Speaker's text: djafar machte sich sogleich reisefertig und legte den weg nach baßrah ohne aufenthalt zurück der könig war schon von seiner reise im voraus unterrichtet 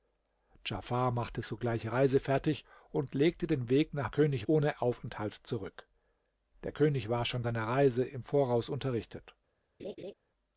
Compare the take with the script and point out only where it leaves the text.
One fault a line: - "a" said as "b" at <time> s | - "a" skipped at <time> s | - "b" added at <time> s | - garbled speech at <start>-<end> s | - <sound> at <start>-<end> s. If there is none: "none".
- "sich" skipped at 1.4 s
- "baßrah" said as "könig" at 4.1 s
- "von" skipped at 7.4 s
- laugh at 9.8-10.1 s